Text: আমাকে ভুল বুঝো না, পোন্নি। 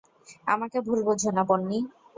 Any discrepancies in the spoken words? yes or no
no